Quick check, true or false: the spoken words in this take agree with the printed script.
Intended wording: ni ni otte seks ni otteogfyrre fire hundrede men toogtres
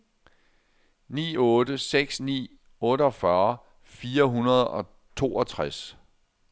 false